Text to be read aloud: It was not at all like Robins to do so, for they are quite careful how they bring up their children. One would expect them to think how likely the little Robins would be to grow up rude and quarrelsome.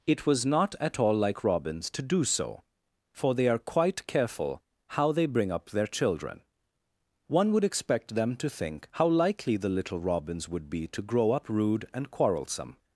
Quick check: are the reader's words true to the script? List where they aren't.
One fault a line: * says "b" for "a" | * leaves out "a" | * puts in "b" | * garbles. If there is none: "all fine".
all fine